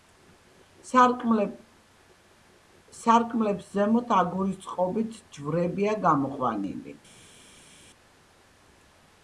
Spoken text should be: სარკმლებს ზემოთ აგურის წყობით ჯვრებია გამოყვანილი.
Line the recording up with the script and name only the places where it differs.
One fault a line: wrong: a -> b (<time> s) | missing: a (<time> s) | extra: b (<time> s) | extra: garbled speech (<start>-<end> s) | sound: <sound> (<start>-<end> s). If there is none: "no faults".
no faults